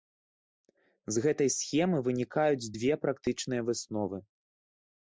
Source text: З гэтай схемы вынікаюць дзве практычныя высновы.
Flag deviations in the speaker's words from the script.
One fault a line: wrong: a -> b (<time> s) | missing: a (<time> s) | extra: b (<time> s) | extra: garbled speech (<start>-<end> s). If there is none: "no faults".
no faults